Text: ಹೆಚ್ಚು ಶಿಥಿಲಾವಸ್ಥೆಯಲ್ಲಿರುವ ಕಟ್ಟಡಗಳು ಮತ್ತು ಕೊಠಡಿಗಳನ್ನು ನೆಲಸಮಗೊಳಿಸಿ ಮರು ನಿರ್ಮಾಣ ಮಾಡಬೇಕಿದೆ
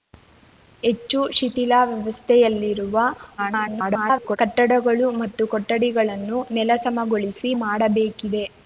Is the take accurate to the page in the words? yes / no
no